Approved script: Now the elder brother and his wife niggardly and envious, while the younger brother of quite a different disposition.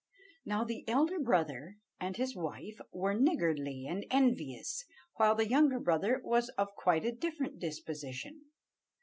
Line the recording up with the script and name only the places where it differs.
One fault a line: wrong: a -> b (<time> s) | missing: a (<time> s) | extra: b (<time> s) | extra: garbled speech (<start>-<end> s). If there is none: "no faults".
extra: were (2.9 s)
extra: was (6.2 s)